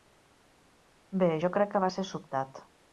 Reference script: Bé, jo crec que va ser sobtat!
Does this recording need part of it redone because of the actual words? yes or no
no